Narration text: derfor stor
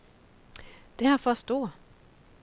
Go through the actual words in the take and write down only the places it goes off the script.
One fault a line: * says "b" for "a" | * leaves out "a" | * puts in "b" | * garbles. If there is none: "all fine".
all fine